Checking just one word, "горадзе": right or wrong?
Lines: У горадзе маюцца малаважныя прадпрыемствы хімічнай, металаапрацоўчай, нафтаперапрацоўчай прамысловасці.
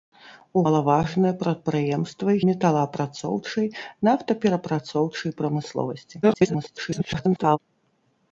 wrong